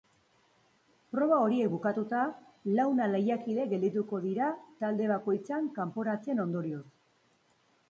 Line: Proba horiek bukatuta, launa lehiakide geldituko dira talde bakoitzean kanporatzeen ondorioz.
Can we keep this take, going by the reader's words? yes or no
yes